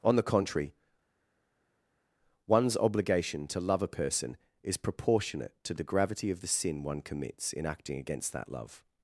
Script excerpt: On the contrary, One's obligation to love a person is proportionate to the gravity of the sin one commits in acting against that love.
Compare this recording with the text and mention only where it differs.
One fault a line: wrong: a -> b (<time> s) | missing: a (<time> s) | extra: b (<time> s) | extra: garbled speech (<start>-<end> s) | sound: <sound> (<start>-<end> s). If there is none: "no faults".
no faults